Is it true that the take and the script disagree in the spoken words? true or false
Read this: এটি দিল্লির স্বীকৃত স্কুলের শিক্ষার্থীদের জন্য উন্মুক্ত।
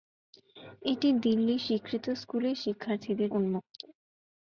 true